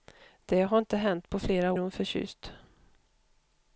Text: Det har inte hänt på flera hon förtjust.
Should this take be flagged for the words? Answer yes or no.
no